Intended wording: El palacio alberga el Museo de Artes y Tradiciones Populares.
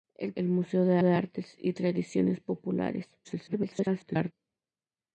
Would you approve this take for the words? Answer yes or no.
no